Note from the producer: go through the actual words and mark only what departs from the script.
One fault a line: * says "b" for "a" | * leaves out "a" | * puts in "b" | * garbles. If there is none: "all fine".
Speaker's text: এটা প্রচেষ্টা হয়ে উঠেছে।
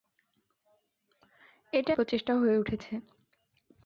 all fine